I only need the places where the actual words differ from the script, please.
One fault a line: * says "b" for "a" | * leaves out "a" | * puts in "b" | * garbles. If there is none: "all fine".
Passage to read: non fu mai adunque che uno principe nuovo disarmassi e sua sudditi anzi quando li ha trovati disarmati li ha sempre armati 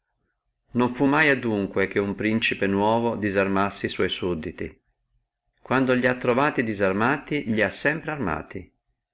* leaves out "anzi"